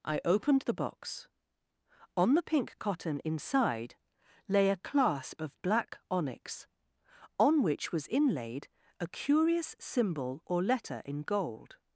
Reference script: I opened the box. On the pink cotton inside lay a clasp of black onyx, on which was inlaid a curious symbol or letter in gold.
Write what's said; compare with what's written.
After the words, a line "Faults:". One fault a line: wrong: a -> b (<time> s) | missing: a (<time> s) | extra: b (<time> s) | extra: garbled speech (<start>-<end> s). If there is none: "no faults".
I opened the box. On the pink cotton inside lay a clasp of black onyx, on which was inlaid a curious symbol or letter in gold.
Faults:
no faults